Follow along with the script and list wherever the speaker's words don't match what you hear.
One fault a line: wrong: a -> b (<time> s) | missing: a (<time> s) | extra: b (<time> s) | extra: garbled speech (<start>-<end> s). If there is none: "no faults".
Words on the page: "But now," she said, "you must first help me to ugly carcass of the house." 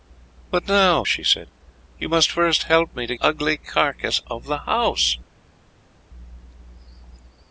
no faults